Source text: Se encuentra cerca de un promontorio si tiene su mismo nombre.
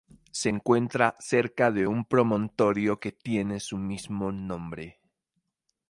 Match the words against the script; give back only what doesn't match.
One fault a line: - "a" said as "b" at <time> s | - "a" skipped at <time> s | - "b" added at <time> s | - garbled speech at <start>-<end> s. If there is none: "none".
- "si" said as "que" at 3.0 s